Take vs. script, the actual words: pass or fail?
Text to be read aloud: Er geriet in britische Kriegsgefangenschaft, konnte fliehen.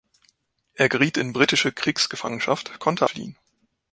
pass